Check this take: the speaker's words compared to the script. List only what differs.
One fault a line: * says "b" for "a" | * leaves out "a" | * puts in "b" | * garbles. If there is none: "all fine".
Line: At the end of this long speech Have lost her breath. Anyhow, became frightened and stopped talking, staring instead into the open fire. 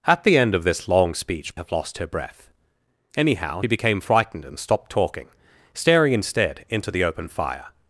all fine